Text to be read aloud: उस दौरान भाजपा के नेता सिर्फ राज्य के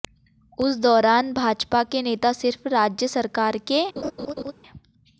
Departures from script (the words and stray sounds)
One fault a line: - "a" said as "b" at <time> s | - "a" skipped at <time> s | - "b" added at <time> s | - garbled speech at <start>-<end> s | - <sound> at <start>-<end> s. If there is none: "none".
- "सरकार" added at 3.1 s
- laugh at 4.0-4.5 s